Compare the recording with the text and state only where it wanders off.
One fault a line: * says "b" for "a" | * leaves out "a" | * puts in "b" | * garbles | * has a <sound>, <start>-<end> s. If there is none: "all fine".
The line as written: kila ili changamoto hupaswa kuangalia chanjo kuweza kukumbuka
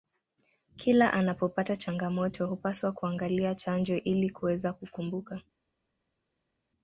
* says "anapopata" for "ili"
* puts in "ili"